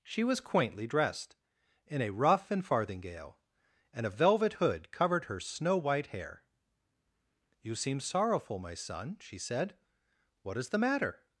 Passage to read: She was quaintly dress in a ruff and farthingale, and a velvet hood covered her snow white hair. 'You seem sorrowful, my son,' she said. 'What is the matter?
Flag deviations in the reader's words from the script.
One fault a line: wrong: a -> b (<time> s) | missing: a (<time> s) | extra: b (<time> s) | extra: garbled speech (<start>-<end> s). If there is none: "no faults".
wrong: dress -> dressed (0.9 s)